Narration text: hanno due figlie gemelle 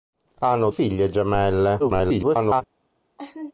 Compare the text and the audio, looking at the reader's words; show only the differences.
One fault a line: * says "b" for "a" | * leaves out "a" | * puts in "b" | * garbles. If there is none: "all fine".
* leaves out "due"
* garbles